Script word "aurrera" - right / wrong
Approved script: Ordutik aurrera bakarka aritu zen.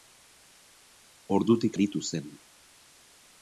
wrong